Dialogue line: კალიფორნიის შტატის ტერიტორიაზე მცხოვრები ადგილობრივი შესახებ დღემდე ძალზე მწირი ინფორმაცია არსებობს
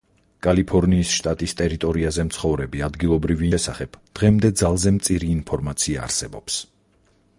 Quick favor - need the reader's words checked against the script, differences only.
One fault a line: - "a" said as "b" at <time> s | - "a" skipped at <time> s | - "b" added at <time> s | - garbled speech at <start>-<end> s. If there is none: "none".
none